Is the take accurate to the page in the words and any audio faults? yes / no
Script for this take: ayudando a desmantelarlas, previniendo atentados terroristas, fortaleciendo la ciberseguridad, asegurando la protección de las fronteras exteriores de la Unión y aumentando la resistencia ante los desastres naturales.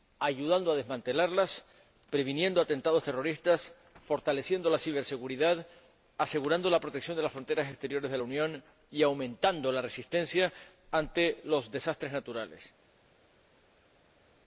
yes